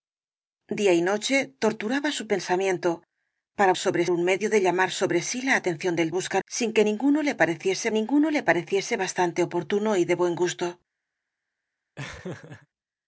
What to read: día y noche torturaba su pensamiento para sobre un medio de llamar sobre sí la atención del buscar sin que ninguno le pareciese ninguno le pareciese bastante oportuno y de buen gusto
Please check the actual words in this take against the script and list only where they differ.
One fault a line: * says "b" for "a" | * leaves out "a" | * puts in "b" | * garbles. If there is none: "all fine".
all fine